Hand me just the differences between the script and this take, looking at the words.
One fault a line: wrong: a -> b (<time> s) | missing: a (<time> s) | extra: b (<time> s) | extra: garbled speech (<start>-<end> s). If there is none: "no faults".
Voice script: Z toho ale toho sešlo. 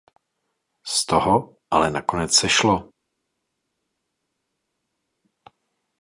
wrong: toho -> nakonec (1.9 s)